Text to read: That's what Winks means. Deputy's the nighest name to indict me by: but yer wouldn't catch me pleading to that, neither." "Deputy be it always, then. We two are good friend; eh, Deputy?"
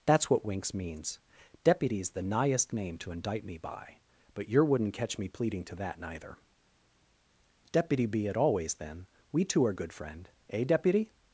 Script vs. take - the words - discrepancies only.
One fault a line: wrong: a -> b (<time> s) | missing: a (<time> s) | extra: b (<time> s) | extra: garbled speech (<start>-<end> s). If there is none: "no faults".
no faults